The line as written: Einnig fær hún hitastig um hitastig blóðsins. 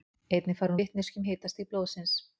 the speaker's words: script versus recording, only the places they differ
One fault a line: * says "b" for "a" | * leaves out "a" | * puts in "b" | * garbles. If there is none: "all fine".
* says "vitneskju" for "hitastig"